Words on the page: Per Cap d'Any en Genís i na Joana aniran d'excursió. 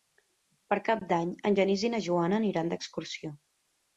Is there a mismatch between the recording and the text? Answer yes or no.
no